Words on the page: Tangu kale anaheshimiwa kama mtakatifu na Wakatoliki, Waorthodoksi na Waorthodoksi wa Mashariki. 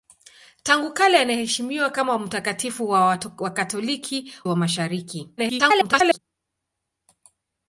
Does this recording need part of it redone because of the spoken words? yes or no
yes